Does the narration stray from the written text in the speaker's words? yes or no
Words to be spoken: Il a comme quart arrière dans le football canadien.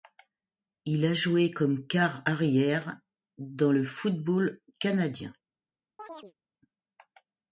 yes